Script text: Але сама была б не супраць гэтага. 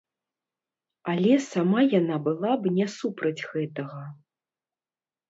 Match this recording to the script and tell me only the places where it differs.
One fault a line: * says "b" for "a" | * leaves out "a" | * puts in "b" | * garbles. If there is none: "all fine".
* puts in "яна"